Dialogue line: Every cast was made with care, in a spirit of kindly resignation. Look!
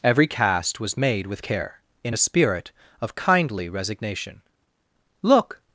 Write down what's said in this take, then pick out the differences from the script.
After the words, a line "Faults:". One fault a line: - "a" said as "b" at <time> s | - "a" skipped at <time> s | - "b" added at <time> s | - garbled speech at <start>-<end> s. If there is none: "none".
Every cast was made with care, in a spirit of kindly resignation. Look!
Faults:
none